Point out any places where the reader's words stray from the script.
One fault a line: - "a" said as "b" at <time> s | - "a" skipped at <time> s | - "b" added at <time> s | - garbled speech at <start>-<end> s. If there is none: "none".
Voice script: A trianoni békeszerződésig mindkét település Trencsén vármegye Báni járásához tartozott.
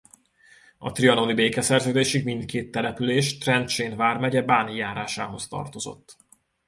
none